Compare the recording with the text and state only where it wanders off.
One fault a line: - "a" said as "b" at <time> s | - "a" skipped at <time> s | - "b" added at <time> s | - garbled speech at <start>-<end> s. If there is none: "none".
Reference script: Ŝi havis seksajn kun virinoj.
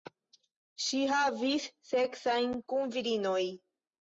none